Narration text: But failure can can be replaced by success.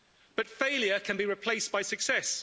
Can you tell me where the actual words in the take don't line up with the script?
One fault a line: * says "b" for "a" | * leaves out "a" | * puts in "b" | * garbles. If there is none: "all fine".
* leaves out "can"